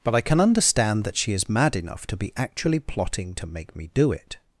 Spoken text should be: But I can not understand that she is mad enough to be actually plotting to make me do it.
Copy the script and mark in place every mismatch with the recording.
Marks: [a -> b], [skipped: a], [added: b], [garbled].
But I can [skipped: not] understand that she is mad enough to be actually plotting to make me do it.